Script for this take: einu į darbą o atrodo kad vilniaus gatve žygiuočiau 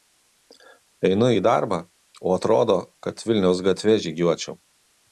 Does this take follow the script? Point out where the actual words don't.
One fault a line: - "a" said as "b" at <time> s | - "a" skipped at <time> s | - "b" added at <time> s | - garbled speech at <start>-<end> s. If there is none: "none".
none